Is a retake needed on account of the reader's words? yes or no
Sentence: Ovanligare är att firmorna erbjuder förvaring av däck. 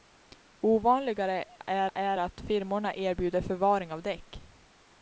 yes